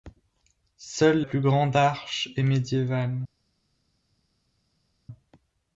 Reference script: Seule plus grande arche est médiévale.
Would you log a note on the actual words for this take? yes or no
no